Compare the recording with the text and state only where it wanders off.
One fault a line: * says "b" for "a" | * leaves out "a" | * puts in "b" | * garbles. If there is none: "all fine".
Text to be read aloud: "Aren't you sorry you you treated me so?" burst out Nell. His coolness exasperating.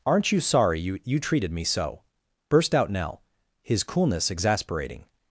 all fine